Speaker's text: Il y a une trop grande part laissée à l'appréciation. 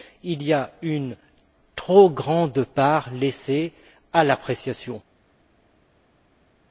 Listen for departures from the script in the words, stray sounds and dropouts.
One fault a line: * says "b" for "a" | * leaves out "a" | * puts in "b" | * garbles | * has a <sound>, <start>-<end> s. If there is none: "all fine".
all fine